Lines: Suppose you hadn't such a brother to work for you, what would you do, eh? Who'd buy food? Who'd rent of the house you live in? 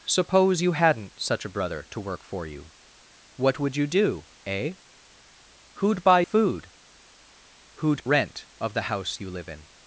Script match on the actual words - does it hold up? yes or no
yes